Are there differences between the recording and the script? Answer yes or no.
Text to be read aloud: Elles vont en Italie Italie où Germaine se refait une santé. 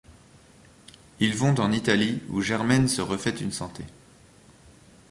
yes